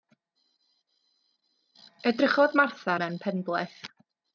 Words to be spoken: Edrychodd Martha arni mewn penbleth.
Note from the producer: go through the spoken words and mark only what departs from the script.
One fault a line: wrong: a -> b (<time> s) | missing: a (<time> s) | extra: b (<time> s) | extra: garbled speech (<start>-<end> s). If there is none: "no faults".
missing: arni (3.0 s)